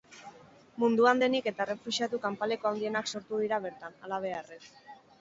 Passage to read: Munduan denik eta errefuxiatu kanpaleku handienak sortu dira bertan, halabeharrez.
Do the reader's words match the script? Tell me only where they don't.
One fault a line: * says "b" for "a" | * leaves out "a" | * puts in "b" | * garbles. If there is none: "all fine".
all fine